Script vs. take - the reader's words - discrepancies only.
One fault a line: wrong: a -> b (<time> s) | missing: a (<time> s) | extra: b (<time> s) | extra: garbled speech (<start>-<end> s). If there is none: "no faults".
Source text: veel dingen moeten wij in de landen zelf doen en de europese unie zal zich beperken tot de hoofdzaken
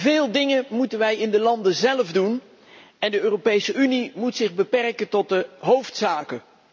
wrong: zal -> moet (4.1 s)